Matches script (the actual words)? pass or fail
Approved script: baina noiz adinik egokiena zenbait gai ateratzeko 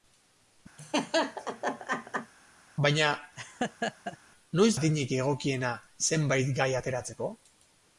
pass